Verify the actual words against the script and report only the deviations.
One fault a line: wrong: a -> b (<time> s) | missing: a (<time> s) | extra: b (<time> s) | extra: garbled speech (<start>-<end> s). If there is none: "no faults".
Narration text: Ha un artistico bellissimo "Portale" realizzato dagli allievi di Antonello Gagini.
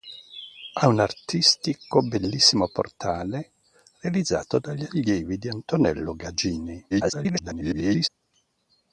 extra: garbled speech (6.9-8.1 s)